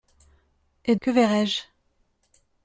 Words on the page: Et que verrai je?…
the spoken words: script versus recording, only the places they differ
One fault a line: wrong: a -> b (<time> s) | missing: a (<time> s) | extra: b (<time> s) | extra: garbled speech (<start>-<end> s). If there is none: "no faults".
no faults